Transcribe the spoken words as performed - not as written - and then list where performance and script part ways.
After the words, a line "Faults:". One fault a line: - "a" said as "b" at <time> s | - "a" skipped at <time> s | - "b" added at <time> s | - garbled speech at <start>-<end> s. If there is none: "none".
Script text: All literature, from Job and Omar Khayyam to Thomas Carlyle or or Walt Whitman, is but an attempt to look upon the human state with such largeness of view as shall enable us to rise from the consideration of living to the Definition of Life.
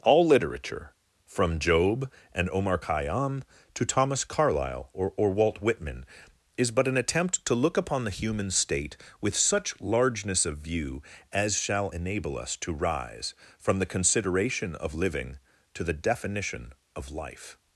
All literature, from Job and Omar Khayyam to Thomas Carlyle or or Walt Whitman, is but an attempt to look upon the human state with such largeness of view as shall enable us to rise from the consideration of living to the Definition of Life.
Faults:
none